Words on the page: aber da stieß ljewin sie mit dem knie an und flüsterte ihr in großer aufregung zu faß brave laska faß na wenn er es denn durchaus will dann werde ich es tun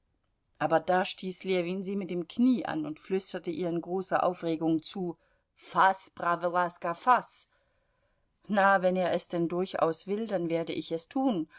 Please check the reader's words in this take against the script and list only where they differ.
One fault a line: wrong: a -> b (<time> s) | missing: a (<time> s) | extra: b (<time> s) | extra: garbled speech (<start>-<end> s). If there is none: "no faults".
no faults